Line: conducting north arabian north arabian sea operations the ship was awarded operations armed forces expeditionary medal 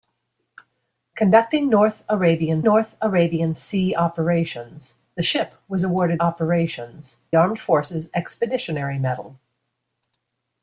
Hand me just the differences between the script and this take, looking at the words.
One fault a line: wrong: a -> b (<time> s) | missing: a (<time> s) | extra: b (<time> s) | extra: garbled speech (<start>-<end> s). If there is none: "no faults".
no faults